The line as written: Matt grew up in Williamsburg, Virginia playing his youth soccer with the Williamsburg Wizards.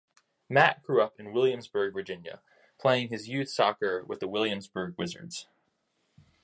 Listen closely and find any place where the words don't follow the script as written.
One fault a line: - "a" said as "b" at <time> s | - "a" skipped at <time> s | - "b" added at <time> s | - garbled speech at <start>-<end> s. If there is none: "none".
none